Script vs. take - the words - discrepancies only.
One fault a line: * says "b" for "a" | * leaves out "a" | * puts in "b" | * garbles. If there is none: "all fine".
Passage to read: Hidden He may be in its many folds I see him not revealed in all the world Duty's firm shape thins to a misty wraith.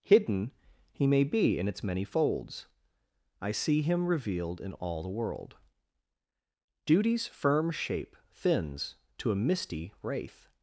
* leaves out "not"